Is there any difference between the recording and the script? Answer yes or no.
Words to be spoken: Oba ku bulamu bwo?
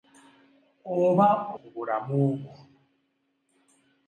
no